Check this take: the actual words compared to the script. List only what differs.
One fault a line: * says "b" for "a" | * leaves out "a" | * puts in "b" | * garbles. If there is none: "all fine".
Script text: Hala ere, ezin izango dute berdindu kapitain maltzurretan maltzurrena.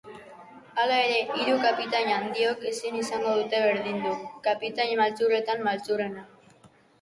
* puts in "hiru kapitain handiok"